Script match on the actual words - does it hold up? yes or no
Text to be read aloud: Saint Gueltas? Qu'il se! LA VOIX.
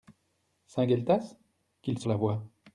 yes